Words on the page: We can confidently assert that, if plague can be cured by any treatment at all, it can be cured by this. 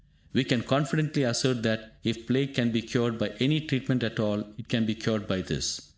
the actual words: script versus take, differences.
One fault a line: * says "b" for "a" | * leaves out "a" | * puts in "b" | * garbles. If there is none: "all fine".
all fine